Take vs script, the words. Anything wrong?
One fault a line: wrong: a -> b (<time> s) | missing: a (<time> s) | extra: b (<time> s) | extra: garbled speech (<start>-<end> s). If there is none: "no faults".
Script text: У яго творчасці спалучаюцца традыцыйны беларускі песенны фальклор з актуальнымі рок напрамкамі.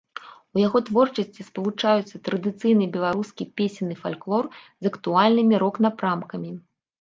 no faults